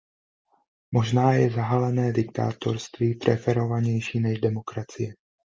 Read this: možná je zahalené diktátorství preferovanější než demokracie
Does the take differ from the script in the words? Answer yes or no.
no